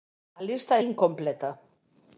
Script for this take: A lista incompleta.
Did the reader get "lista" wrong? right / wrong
right